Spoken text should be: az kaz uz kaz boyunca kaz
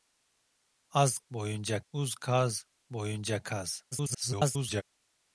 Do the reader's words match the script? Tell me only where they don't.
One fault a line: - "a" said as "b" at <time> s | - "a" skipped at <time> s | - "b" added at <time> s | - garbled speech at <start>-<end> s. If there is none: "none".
- "kaz" said as "boyunca" at 1.3 s
- garbled speech at 3.9-4.8 s